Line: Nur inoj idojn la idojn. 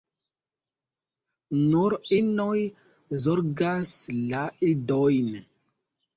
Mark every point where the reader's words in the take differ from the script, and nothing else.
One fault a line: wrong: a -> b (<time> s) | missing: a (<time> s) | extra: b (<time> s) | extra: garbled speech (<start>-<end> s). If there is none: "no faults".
wrong: idojn -> zorgas (3.2 s)